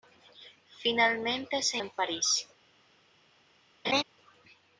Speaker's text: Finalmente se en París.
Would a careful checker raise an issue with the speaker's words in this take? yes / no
no